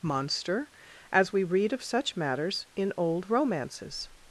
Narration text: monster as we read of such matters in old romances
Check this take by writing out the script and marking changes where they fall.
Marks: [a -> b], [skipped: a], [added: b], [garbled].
monster as we read of such matters in old romances